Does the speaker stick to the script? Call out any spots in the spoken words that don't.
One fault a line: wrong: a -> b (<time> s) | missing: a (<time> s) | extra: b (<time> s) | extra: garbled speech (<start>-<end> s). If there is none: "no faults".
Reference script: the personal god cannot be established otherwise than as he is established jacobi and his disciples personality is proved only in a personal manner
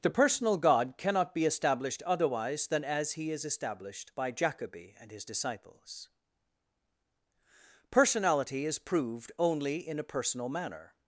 extra: by (4.2 s)